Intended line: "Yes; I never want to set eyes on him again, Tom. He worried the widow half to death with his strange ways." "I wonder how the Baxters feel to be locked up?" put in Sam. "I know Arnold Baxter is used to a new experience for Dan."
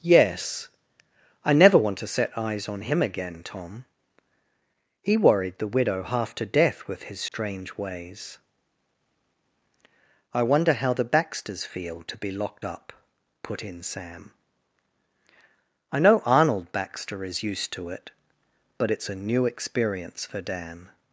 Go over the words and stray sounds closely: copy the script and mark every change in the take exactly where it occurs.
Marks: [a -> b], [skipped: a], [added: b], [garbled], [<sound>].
"Yes; I never want to set eyes on him again, Tom. He worried the widow half to death with his strange [dropout] ways." "I wonder how the Baxters feel to be locked up?" put in Sam. "I know Arnold Baxter is used to [added: it but it's] a new experience for Dan."